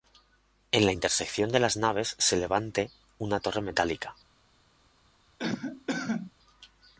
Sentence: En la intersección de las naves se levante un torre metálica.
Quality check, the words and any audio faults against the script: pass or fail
fail